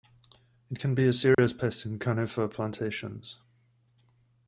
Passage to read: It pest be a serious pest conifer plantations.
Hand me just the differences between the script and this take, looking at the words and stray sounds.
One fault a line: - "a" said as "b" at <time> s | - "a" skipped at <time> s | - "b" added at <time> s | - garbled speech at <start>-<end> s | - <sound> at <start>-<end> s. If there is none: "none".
- "pest" said as "can" at 0.8 s
- dropout at 1.3-1.4 s
- "in" added at 1.8 s